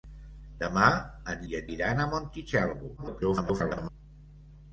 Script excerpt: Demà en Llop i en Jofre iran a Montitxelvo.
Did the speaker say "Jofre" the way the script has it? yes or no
no